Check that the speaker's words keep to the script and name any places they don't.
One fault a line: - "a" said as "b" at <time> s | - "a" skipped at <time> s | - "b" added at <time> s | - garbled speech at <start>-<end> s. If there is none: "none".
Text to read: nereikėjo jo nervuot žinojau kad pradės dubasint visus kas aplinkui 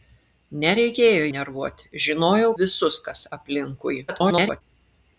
- "jo" skipped at 1.3 s
- "kad pradės dubasint" skipped at 2.5 s
- garbled speech at 4.1-4.6 s